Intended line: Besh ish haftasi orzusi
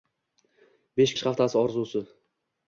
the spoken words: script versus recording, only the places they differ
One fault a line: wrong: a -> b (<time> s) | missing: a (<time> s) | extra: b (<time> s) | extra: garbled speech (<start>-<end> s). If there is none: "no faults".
no faults